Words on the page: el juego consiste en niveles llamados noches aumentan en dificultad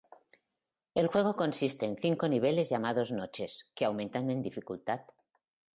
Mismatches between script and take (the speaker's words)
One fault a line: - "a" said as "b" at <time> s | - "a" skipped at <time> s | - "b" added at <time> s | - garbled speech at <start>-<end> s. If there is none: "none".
- "cinco" added at 1.9 s
- "que" added at 3.8 s